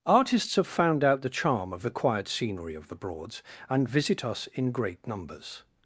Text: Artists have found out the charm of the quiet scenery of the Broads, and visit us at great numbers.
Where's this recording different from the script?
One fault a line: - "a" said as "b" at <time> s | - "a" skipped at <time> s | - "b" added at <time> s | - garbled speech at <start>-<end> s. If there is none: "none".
- "at" said as "in" at 4.5 s